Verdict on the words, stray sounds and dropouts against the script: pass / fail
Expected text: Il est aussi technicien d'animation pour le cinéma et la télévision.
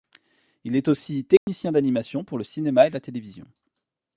fail